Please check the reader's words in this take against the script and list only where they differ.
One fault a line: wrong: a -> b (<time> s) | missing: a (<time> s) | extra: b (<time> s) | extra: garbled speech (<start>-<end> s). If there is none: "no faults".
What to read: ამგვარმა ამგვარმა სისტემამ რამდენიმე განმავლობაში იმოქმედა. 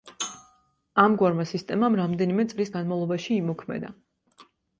missing: ამგვარმა (1.4 s)
extra: წლის (2.5 s)